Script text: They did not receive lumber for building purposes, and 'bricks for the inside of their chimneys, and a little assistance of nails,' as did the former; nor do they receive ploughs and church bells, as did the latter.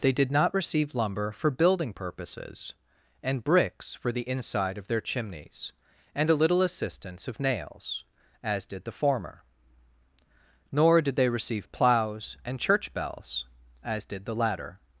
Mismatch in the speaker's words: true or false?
true